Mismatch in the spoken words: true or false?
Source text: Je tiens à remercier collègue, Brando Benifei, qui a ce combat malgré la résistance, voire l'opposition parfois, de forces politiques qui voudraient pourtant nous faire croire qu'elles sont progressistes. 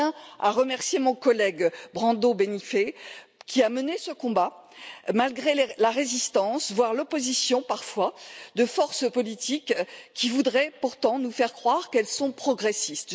true